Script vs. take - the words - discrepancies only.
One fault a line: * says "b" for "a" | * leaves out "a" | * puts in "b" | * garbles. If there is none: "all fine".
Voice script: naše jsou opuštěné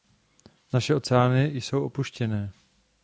* puts in "oceány"